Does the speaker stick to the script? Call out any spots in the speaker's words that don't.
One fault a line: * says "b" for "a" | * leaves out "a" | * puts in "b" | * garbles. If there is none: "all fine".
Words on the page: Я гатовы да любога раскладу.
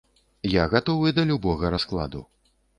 all fine